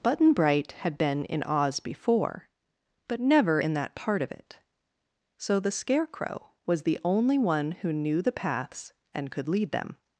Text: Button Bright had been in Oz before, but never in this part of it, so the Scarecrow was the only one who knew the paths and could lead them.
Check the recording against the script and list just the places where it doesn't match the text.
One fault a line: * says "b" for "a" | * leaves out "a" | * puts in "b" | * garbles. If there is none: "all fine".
* says "that" for "this"